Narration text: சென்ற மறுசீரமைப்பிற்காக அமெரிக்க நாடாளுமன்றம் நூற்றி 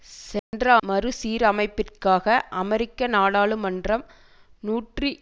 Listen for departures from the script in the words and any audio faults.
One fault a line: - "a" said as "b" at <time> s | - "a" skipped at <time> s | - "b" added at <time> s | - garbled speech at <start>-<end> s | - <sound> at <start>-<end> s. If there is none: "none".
- dropout at 0.4-0.5 s